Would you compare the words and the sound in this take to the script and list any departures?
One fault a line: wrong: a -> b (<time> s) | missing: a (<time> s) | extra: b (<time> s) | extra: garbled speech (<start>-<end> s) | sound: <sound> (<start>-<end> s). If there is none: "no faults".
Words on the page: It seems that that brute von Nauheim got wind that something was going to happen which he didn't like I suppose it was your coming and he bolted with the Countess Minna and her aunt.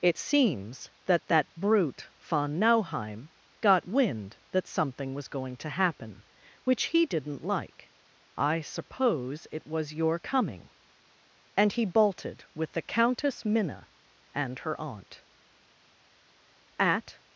extra: At (16.8 s)